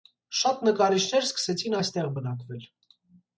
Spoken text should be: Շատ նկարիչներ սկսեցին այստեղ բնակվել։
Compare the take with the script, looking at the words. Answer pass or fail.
pass